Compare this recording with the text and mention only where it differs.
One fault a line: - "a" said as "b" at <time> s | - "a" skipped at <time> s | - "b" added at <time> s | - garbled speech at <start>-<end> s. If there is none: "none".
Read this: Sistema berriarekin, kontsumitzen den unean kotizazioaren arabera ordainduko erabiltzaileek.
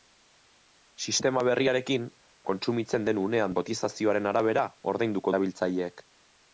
none